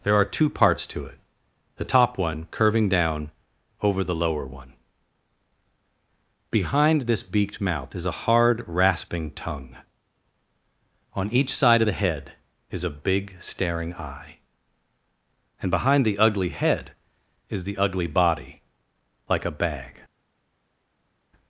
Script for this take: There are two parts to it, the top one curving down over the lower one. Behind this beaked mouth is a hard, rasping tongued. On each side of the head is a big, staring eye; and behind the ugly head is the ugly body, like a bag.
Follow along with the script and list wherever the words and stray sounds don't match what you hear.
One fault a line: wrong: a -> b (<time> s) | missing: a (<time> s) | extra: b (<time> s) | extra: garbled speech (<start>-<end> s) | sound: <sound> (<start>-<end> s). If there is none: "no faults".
wrong: tongued -> tongue (9.3 s)